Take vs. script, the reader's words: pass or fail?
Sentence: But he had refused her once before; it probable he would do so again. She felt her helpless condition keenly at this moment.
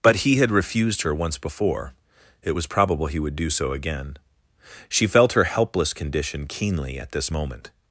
fail